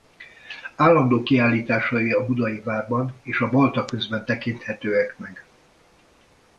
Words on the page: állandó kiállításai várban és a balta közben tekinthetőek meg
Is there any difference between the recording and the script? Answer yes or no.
yes